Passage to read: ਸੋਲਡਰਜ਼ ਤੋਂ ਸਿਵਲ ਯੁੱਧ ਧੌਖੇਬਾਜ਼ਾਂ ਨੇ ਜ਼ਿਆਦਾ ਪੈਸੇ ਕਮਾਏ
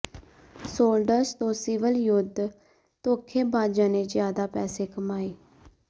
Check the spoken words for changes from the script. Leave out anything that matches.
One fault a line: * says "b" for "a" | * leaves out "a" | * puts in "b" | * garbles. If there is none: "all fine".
all fine